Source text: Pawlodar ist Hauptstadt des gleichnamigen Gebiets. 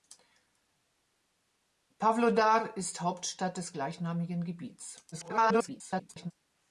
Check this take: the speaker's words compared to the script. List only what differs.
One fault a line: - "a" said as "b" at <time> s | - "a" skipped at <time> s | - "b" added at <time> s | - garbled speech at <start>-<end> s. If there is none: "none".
- garbled speech at 5.1-6.3 s